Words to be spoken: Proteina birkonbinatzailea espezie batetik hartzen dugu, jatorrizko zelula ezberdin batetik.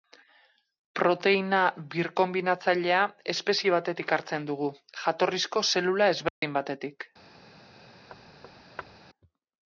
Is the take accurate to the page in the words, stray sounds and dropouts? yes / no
no